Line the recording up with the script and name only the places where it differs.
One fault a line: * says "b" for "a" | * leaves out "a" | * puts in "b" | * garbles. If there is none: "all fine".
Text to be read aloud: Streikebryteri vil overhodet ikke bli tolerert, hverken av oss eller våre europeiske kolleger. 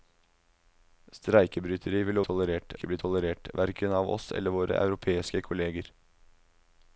* says "tolerert" for "overhodet"